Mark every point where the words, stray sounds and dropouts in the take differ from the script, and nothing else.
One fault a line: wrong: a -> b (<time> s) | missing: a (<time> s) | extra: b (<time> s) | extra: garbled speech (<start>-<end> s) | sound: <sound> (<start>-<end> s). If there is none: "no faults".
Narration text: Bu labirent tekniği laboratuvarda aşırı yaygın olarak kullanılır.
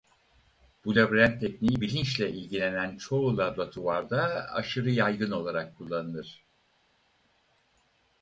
extra: bilinçle ilgilenen çoğu (1.8 s)